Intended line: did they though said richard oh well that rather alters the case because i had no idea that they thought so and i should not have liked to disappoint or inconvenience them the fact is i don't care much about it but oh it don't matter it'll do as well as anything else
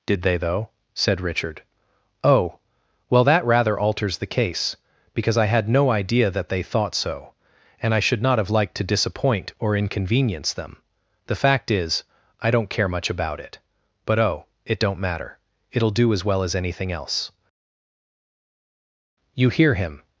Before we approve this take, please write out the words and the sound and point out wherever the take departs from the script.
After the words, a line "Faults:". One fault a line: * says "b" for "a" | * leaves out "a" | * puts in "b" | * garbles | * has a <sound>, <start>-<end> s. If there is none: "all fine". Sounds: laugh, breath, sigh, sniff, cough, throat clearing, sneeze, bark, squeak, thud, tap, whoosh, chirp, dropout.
did they though said richard oh well that rather alters the case because i had no idea that they thought so and i should not have liked to disappoint or inconvenience them the fact is i don't care much about it but oh it don't matter it'll do as well as anything else you hear him
Faults:
* puts in "you hear him"